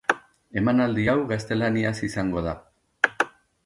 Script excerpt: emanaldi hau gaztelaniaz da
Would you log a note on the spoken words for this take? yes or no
yes